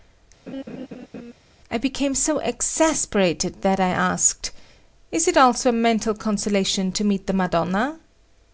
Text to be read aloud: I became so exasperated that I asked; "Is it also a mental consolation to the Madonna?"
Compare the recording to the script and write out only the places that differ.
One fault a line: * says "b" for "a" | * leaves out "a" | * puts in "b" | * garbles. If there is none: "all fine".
* puts in "meet"